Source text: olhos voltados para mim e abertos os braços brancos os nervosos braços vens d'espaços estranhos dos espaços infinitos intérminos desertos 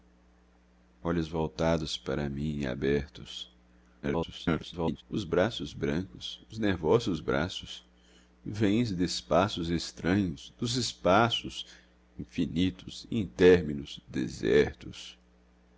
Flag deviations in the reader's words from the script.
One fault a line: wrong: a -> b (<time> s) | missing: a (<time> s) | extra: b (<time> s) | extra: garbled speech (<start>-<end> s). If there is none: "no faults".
extra: garbled speech (4.0-5.0 s)